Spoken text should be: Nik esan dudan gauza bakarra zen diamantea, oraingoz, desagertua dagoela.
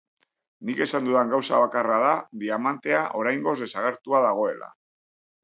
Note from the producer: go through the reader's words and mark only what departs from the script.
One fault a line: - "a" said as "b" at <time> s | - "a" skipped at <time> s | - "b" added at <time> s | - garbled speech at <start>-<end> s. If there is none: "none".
- "zen" said as "da" at 2.0 s